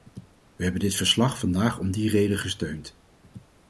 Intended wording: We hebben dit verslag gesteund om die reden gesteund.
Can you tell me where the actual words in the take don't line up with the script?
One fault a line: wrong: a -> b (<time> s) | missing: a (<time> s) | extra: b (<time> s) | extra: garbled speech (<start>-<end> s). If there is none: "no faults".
wrong: gesteund -> vandaag (1.4 s)